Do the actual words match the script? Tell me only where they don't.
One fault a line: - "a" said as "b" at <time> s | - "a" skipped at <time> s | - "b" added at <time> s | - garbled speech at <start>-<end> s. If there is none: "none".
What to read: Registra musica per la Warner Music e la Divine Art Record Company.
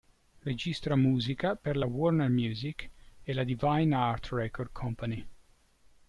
none